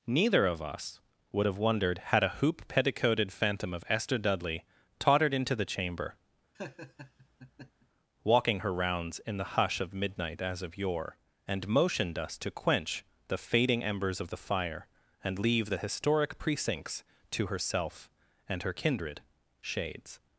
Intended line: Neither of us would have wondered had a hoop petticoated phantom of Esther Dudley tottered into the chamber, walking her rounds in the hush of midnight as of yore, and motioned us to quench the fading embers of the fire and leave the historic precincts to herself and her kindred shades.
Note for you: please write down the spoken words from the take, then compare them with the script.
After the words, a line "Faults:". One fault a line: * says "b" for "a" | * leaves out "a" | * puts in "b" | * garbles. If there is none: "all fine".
Neither of us would have wondered had a hoop petticoated phantom of Esther Dudley tottered into the chamber, walking her rounds in the hush of midnight as of yore, and motioned us to quench the fading embers of the fire and leave the historic precincts to herself and her kindred shades.
Faults:
all fine